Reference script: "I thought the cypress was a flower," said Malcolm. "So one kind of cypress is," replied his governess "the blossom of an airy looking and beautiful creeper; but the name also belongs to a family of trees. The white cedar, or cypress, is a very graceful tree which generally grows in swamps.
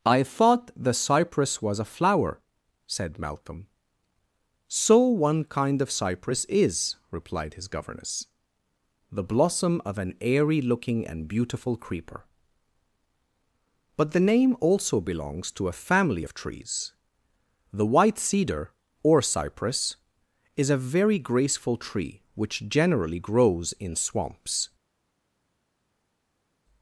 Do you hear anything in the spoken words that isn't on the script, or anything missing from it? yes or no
no